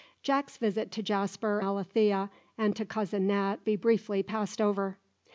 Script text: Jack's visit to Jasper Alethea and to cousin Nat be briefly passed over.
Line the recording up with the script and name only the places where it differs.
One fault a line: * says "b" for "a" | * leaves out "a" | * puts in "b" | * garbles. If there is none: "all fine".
all fine